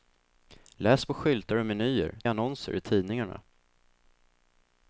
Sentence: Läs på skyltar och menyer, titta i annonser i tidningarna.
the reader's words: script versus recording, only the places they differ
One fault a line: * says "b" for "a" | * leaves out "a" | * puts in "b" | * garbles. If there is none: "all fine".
* leaves out "titta"